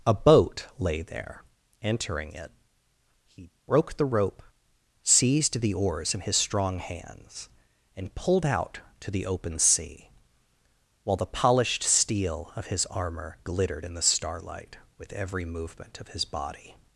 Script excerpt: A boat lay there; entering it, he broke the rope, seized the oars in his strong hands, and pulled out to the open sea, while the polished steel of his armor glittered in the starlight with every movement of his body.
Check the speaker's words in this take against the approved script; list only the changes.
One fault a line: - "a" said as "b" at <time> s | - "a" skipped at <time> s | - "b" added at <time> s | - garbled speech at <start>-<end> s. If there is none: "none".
none